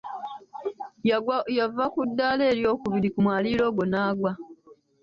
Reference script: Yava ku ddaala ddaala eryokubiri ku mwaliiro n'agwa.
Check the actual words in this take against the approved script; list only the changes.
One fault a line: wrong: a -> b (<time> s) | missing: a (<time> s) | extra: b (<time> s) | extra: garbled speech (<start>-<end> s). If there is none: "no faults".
missing: ddaala (2.4 s)
extra: ogwo (3.7 s)